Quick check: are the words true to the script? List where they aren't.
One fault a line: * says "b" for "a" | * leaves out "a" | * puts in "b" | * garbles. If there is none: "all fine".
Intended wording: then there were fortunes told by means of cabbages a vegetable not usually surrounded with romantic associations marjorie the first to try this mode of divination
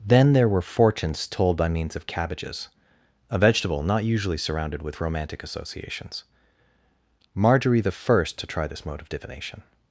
all fine